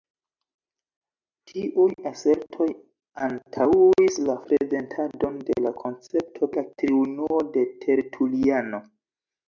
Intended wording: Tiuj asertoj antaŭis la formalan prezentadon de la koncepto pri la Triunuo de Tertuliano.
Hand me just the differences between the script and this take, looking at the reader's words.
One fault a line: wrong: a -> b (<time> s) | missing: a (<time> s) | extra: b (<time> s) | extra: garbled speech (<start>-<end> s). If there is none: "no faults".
missing: formalan (4.4 s)
missing: pri (6.5 s)